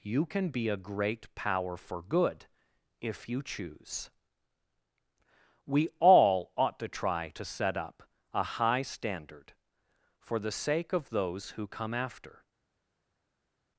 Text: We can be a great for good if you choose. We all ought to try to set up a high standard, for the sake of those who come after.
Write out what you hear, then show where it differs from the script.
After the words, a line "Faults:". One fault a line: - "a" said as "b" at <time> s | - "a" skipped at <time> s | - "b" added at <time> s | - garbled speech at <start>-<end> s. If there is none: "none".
You can be a great power for good if you choose. We all ought to try to set up a high standard, for the sake of those who come after.
Faults:
- "We" said as "You" at 0.0 s
- "power" added at 1.4 s